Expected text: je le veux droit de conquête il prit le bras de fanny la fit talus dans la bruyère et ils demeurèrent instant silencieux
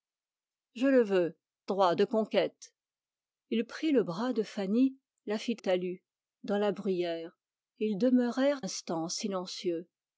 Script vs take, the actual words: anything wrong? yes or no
no